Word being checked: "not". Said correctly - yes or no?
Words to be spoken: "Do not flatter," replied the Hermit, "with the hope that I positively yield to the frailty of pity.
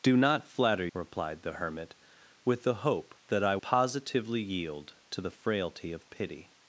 yes